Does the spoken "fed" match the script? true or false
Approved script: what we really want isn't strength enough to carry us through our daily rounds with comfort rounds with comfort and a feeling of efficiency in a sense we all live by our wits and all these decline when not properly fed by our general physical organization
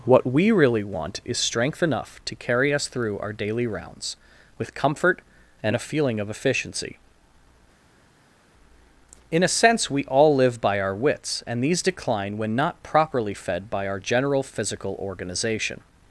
true